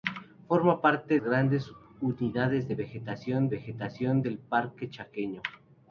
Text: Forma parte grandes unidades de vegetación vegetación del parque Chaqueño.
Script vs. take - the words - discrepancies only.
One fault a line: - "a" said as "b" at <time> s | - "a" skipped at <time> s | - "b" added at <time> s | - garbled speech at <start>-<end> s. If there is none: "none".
none